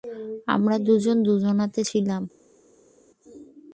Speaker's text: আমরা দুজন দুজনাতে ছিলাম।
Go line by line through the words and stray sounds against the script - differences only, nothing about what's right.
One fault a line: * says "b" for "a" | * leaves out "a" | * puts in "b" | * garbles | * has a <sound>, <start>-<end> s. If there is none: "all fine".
all fine